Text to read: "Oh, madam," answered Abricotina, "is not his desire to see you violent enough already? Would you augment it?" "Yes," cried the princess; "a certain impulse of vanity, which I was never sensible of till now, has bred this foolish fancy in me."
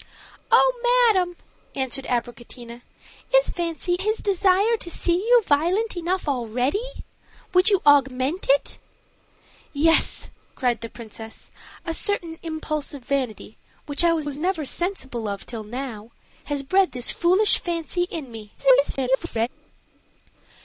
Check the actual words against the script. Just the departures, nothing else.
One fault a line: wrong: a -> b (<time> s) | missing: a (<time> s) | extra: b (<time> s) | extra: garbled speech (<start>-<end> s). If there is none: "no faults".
wrong: not -> fancy (3.5 s)
extra: was (14.2 s)
extra: garbled speech (18.6-19.5 s)